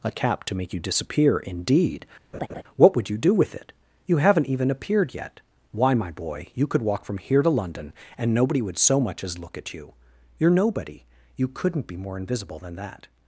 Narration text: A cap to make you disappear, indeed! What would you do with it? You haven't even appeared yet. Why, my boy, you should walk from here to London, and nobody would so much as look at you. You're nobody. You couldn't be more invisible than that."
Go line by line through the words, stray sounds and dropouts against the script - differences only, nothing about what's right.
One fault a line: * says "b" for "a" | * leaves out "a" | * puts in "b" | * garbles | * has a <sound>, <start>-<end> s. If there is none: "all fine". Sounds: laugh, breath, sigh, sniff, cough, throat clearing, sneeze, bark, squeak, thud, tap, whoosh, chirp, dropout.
* has a laugh, 2.3-2.6 s
* says "could" for "should"